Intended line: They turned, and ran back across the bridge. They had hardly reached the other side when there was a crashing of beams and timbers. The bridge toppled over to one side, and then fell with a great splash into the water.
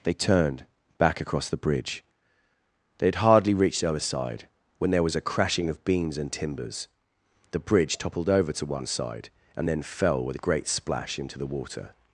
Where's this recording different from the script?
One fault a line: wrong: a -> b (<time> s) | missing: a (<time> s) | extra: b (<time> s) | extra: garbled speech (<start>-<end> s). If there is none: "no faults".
missing: and ran (0.7 s)